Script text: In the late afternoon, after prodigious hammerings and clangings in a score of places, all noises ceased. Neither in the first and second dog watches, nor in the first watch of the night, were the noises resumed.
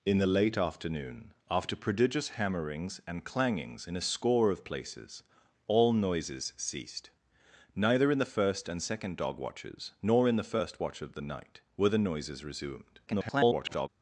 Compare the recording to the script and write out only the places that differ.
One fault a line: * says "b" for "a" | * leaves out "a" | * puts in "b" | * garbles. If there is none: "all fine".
* garbles